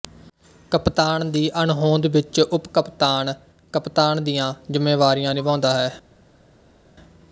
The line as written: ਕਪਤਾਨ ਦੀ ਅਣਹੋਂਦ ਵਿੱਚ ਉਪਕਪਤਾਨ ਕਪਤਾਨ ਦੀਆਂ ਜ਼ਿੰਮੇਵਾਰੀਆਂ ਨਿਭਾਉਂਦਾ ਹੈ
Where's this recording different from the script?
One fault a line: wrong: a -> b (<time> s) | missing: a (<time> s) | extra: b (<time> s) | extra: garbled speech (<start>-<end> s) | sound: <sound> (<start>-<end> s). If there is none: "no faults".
no faults